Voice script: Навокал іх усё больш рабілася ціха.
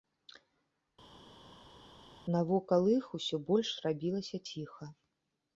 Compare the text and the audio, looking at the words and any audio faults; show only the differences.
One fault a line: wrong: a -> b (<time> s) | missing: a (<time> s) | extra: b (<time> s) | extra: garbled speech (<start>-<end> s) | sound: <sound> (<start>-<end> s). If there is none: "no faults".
no faults